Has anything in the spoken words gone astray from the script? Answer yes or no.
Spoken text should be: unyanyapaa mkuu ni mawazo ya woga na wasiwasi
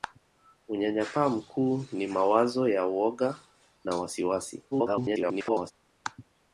yes